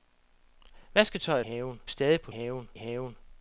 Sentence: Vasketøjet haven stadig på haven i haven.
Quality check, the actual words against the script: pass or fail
pass